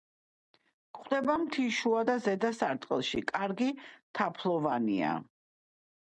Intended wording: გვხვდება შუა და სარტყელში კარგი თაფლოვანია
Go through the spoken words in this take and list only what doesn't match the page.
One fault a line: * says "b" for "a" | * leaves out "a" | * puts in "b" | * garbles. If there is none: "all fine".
* puts in "მთის"
* puts in "ზედა"